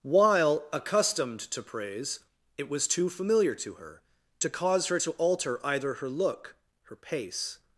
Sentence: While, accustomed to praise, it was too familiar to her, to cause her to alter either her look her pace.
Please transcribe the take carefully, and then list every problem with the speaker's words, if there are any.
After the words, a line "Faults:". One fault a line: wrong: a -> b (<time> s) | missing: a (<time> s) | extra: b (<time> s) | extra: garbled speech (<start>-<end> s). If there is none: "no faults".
While, accustomed to praise, it was too familiar to her, to cause her to alter either her look her pace.
Faults:
no faults